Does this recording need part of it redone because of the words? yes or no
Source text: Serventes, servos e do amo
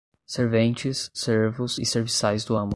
yes